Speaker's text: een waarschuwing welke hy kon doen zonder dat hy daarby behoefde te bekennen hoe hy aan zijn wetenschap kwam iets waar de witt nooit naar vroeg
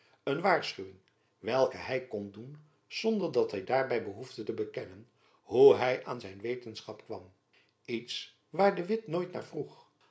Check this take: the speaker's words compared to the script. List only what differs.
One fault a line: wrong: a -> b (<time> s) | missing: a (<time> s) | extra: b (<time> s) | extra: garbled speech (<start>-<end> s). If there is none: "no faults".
no faults